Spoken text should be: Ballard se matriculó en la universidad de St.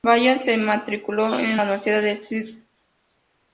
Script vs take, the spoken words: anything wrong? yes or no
no